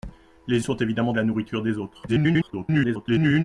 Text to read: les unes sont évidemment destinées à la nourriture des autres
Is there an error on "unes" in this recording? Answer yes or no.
yes